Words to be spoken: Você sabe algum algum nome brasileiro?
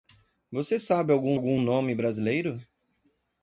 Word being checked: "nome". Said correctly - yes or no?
yes